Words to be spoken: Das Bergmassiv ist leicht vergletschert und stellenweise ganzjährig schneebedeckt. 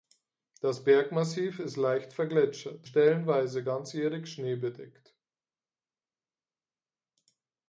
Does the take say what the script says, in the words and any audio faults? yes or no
no